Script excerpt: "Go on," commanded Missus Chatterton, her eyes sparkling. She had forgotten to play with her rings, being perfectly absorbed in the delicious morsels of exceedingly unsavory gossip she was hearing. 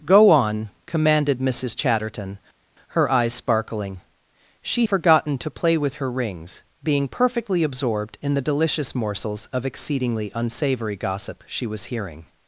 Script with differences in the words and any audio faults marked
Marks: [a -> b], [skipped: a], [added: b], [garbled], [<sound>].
"Go on," commanded Missus Chatterton, her eyes sparkling. She [skipped: had] forgotten to play with her rings, being perfectly absorbed in the delicious morsels of exceedingly unsavory gossip she was hearing.